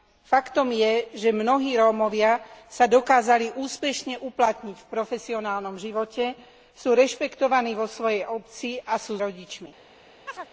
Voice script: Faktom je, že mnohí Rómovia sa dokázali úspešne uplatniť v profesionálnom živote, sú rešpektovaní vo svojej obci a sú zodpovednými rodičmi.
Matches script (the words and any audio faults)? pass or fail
fail